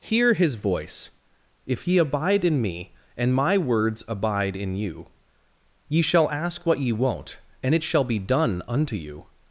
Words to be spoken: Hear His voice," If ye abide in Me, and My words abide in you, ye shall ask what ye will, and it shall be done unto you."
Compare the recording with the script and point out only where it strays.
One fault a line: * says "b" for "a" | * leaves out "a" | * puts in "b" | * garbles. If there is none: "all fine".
* says "won't" for "will"